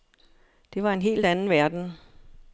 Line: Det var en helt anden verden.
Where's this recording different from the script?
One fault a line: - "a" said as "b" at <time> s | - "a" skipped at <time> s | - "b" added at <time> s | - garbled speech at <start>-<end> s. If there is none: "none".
none